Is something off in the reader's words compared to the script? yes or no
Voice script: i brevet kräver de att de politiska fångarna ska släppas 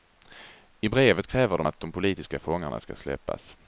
no